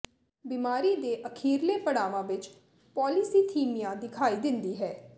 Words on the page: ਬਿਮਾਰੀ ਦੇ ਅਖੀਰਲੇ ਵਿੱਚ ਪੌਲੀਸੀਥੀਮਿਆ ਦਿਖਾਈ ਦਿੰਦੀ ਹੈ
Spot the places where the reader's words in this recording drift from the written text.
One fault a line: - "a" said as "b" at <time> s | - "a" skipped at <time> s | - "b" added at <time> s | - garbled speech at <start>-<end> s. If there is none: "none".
- "ਪੜਾਵਾਂ" added at 1.8 s